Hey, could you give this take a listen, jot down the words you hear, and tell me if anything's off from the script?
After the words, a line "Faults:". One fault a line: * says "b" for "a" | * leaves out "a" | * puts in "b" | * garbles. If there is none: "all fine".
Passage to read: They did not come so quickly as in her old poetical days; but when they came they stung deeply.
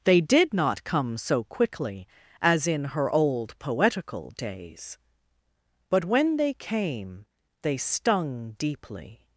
They did not come so quickly as in her old poetical days; but when they came they stung deeply.
Faults:
all fine